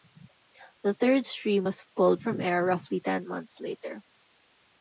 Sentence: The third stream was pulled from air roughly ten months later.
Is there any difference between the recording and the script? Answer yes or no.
no